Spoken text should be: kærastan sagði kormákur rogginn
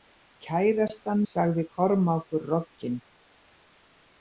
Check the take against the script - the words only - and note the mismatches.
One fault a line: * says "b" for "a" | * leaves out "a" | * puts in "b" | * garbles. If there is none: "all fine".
all fine